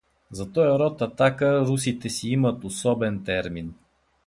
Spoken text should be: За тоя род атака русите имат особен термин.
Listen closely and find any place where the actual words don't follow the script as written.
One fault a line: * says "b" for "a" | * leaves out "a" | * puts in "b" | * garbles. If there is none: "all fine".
* puts in "си"